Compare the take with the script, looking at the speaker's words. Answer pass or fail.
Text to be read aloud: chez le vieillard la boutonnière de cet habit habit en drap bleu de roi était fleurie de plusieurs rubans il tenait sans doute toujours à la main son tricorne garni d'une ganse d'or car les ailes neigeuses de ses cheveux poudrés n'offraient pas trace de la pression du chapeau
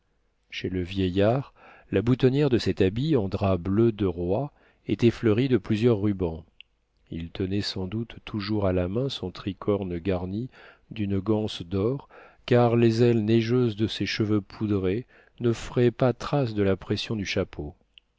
fail